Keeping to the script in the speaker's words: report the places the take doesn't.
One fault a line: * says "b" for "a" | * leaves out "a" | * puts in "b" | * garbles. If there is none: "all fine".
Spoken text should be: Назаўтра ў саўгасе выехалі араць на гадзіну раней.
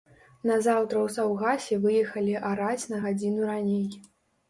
all fine